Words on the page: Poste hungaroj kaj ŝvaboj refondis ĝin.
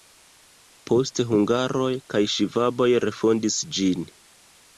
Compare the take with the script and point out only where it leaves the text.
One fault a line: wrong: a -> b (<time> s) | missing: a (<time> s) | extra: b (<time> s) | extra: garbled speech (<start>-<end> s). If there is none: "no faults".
no faults